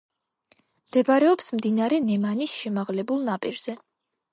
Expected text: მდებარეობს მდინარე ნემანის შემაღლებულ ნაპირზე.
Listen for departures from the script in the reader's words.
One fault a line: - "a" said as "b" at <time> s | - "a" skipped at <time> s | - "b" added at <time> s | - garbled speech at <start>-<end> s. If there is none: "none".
none